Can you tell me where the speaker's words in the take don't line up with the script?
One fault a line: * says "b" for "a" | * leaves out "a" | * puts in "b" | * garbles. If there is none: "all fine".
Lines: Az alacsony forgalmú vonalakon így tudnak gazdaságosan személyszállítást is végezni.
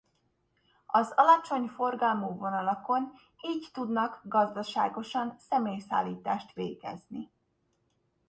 * leaves out "is"